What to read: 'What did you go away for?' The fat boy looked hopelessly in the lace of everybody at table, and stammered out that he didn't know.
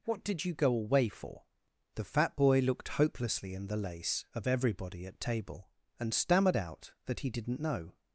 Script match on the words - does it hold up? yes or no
yes